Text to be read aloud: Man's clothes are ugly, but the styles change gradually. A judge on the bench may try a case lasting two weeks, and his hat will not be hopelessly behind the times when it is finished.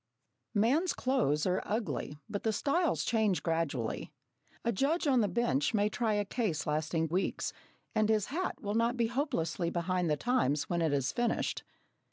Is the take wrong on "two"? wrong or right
wrong